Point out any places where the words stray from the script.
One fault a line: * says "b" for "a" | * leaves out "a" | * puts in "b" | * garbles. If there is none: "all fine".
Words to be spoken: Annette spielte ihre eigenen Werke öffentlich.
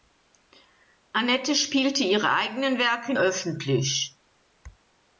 all fine